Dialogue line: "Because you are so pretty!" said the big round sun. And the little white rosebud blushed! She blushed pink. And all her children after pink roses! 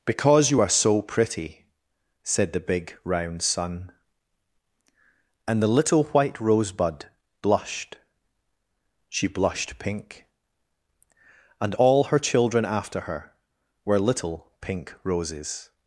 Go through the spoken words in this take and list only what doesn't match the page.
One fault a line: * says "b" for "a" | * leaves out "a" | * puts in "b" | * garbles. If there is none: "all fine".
* puts in "her were little"